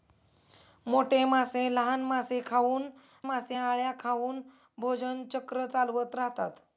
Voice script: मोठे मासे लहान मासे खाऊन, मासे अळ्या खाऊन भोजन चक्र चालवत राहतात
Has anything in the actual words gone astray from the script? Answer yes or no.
no